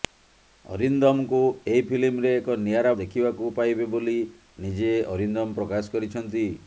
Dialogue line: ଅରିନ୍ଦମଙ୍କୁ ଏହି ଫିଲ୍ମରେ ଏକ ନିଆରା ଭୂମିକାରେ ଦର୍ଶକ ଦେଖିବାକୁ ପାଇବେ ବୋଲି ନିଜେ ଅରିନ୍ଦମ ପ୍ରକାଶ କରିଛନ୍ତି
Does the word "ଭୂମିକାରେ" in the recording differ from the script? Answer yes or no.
yes